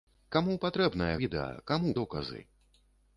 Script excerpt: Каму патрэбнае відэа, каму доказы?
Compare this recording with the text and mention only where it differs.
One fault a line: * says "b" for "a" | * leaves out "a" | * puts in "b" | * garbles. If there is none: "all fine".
all fine